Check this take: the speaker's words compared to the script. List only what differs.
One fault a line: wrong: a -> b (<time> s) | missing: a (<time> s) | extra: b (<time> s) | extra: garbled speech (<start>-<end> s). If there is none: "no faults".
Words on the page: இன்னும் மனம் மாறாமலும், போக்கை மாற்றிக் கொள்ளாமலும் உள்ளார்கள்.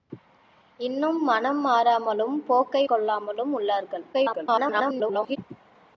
missing: மாற்றிக் (2.9 s)
extra: garbled speech (4.1-5.4 s)